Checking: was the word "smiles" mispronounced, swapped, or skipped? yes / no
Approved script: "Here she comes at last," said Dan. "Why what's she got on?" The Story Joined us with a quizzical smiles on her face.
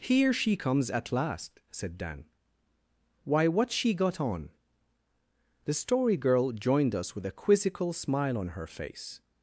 yes